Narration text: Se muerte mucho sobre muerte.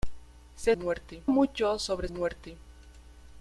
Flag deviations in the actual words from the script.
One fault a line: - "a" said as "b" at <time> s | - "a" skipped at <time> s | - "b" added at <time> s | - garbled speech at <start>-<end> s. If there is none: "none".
none